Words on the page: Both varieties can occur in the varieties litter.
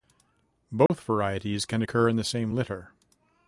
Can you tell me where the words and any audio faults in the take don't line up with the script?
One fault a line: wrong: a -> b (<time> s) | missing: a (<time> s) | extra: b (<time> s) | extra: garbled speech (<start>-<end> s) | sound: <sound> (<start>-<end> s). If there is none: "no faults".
sound: dropout (0.9-0.9 s)
wrong: varieties -> same (2.2 s)